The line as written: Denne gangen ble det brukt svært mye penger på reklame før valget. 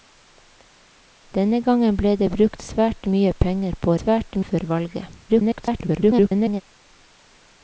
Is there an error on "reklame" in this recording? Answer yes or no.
yes